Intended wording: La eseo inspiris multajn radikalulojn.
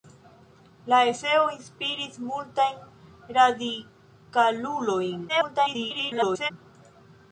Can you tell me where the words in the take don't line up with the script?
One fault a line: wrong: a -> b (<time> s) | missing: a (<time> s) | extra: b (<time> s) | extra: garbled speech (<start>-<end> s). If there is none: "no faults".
extra: garbled speech (5.3-6.5 s)